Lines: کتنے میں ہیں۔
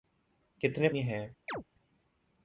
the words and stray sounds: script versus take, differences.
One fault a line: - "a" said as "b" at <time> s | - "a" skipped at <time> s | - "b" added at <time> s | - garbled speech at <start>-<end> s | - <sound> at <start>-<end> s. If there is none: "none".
- chirp at 1.5-1.6 s